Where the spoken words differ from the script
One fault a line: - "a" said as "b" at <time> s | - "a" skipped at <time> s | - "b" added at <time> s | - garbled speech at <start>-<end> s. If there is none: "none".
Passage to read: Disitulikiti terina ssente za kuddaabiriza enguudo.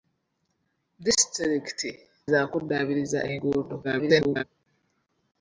- "terina ssente" skipped at 1.9 s
- garbled speech at 3.8-4.4 s